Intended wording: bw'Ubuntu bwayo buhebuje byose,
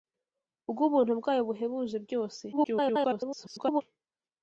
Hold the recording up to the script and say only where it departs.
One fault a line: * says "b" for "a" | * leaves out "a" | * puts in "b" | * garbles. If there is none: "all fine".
* garbles